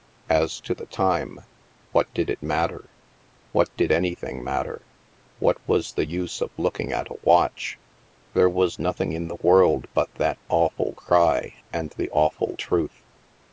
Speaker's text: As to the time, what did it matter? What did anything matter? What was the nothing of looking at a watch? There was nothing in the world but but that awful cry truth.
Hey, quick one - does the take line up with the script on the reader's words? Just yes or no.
no